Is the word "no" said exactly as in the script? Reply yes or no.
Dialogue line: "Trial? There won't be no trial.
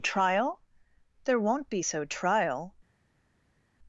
no